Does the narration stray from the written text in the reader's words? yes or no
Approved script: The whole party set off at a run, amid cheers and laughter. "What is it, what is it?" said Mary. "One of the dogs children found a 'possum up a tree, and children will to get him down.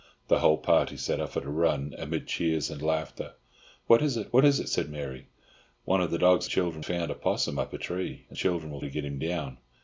no